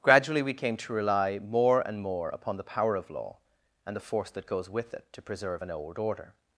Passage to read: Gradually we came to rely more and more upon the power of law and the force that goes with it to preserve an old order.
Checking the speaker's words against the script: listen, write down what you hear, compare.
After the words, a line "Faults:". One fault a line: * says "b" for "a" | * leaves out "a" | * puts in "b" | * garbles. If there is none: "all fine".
Gradually we came to rely more and more upon the power of law and the force that goes with it to preserve an old order.
Faults:
all fine